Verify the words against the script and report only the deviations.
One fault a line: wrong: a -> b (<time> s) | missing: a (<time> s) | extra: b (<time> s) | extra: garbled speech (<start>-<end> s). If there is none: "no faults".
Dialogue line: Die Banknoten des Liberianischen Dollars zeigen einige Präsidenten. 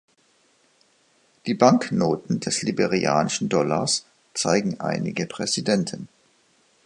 no faults